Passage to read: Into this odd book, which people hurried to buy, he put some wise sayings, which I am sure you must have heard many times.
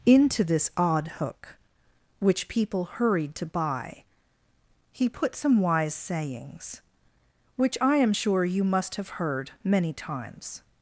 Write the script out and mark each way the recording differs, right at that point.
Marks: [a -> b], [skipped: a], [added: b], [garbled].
Into this odd [book, -> hook] which people hurried to buy, he put some wise sayings, which I am sure you must have heard many times.